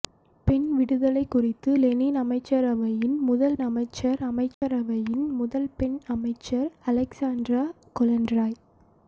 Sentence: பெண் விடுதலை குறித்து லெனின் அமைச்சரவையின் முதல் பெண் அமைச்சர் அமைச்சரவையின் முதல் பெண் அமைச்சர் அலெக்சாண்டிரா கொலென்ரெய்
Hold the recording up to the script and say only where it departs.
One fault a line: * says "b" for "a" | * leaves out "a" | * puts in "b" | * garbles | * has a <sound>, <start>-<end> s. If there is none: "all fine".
* leaves out "பெண்"
* has a dropout, 4.5-4.6 s